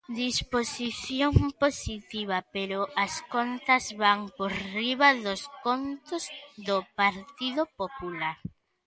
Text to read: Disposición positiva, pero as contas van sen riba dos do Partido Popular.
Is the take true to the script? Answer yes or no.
no